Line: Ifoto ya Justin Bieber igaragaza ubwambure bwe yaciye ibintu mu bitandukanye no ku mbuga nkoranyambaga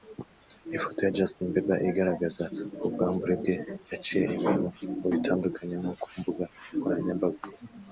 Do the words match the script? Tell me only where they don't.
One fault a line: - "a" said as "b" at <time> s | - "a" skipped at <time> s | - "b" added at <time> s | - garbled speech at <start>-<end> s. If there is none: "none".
none